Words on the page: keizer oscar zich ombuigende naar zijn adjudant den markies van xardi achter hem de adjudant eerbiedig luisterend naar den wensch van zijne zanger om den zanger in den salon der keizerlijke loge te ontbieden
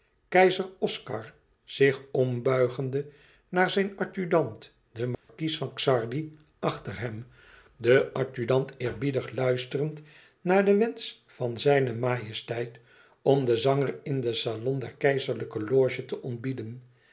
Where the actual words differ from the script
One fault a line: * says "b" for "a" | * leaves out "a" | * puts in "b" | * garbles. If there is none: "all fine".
* says "majesteit" for "zanger"